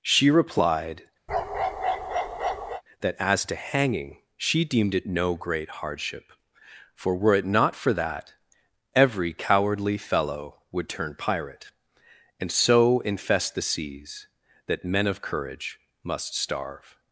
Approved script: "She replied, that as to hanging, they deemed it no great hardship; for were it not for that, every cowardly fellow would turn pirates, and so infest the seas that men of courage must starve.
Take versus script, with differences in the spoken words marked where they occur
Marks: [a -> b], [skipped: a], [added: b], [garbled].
"She replied, that as to hanging, [they -> she] deemed it no great hardship; for were it not for that, every cowardly fellow would turn [pirates, -> pirate] and so infest the seas that men of courage must starve.